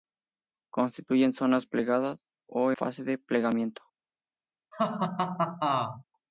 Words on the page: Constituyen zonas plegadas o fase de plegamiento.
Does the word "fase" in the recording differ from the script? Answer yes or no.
no